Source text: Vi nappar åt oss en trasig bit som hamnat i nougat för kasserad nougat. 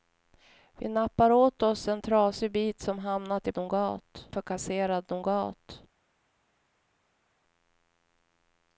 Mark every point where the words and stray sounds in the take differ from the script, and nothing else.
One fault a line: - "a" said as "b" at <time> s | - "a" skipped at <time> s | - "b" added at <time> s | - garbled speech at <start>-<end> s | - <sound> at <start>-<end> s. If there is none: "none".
none